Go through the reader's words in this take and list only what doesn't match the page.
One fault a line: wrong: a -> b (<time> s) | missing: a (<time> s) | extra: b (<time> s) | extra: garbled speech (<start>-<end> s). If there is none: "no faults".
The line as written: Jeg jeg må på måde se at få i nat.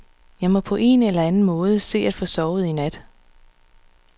missing: jeg (0.5 s)
extra: en eller anden (0.8 s)
extra: sovet (2.2 s)